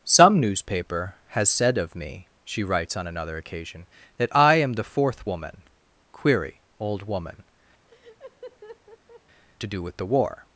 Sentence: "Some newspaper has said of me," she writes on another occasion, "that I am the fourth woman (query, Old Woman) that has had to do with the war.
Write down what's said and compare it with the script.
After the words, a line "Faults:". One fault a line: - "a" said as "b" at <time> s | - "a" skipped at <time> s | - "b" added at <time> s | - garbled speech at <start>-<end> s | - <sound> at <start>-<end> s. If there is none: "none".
"Some newspaper has said of me," she writes on another occasion, "that I am the fourth woman (query, Old Woman) to do with the war.
Faults:
- "that has had" skipped at 7.4 s
- laugh at 7.9-9.2 s